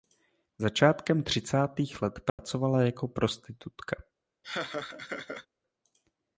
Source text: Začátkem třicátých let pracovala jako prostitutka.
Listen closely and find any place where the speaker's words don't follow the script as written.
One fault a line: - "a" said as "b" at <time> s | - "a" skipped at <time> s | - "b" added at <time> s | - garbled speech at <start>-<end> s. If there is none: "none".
none